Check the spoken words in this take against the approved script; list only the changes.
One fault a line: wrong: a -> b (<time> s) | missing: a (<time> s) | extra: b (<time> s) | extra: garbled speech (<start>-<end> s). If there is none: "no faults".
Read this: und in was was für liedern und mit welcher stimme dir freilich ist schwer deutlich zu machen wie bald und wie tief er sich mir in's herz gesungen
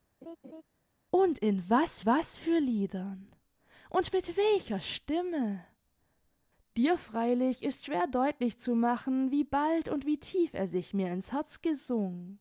no faults